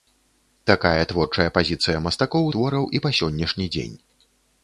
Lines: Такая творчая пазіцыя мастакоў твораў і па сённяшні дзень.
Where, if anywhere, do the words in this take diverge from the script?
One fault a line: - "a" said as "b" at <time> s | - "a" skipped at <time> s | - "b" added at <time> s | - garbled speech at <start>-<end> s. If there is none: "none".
none